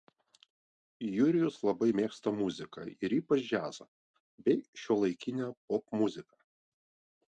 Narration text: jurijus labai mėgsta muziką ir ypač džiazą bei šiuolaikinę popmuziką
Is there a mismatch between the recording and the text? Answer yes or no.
no